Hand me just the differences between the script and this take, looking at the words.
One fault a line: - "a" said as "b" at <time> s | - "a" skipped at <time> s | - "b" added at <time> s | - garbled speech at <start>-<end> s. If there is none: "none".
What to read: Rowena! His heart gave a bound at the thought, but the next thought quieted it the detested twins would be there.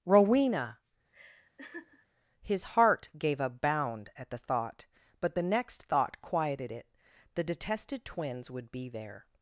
none